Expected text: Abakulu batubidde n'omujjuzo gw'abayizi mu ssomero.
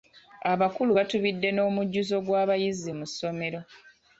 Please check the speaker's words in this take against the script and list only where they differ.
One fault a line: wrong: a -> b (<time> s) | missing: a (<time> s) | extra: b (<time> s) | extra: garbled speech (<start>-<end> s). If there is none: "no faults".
no faults